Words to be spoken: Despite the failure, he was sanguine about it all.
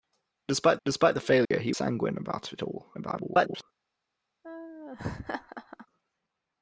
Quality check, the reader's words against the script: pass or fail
fail